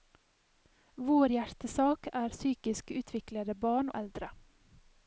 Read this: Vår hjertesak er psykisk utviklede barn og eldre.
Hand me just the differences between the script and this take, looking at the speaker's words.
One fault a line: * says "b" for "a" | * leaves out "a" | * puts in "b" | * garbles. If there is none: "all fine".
* leaves out "og"